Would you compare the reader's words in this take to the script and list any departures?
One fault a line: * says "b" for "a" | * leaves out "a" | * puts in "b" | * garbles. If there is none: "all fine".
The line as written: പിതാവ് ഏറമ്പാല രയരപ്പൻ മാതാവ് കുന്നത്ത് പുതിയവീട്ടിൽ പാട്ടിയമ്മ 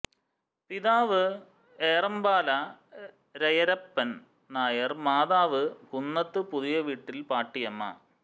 * puts in "നായർ"